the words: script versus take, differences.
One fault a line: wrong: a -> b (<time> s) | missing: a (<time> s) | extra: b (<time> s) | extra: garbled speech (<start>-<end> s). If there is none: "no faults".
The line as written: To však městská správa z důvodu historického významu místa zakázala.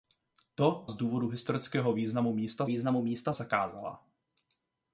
missing: však městská správa (0.8 s)
extra: významu místa (2.6 s)